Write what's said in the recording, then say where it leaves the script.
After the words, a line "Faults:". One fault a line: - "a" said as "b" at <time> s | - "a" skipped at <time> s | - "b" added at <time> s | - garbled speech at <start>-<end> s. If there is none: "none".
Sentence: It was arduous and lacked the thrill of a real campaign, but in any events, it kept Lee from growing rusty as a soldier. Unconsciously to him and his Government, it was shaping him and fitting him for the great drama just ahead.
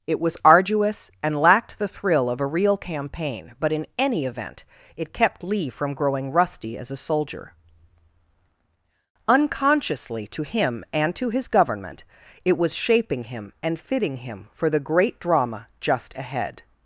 It was arduous and lacked the thrill of a real campaign, but in any event, it kept Lee from growing rusty as a soldier. Unconsciously to him and to his Government, it was shaping him and fitting him for the great drama just ahead.
Faults:
- "events" said as "event" at 4.2 s
- "to" added at 11.2 s